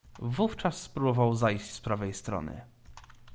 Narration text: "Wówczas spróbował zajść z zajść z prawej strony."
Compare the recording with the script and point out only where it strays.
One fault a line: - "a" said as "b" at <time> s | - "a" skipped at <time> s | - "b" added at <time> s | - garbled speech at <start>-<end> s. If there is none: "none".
- "zajść z" skipped at 1.8 s